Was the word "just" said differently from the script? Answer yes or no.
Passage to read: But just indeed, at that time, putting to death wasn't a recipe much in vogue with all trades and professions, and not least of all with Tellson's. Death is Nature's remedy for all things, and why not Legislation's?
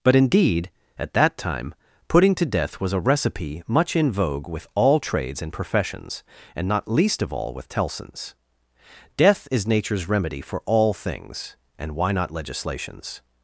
yes